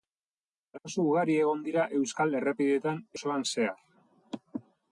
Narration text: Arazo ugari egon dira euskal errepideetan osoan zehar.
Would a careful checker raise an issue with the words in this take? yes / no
no